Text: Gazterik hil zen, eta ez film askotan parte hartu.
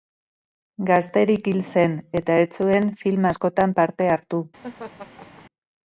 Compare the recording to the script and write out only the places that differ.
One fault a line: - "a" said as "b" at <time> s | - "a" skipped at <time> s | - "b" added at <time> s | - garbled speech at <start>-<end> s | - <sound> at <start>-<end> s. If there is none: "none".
- "zuen" added at 2.6 s
- laugh at 4.6-5.5 s